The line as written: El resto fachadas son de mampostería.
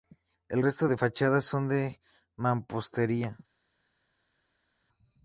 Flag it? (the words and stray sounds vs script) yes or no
yes